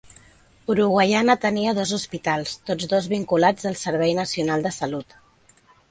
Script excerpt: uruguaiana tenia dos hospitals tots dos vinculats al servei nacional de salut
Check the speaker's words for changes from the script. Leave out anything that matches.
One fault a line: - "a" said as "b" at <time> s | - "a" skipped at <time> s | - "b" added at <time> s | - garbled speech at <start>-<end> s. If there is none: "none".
none